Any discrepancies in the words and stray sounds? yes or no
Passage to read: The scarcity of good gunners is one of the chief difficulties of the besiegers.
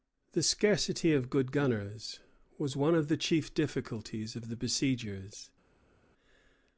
yes